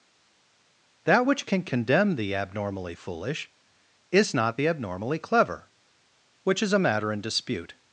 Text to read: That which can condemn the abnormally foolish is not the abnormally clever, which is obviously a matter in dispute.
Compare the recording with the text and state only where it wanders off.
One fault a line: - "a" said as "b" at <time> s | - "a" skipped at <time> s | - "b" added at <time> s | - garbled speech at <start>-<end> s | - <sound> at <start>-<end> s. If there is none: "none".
- "obviously" skipped at 6.7 s